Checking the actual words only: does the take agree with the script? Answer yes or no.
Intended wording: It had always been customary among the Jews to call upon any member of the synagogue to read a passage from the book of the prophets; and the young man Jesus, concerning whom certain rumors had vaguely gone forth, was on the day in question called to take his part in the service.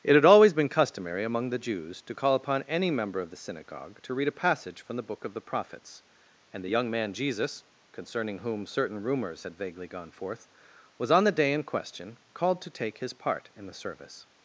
yes